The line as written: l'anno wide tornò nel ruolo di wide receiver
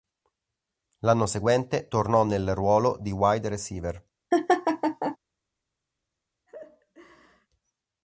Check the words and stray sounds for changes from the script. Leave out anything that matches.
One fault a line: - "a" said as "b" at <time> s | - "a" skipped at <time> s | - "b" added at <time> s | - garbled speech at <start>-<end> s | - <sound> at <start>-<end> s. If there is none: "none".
- "wide" said as "seguente" at 1.3 s
- laugh at 4.3-5.2 s
- laugh at 6.5-7.5 s